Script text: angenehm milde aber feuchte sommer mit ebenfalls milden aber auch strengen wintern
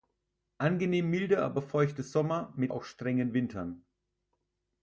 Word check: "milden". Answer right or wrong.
wrong